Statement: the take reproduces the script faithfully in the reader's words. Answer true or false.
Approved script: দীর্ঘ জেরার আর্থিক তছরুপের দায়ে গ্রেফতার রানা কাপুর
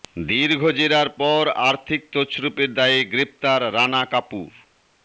false